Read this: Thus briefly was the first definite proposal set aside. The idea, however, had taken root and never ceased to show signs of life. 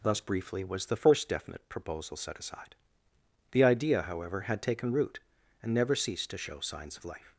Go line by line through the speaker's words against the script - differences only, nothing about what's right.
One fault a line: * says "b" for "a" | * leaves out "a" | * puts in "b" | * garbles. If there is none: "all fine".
all fine